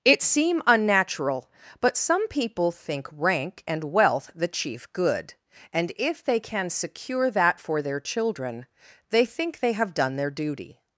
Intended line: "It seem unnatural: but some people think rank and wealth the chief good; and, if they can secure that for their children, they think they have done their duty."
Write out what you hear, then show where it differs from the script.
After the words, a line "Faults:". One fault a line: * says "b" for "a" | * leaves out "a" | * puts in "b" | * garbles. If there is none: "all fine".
"It seem unnatural: but some people think rank and wealth the chief good; and, if they can secure that for their children, they think they have done their duty."
Faults:
all fine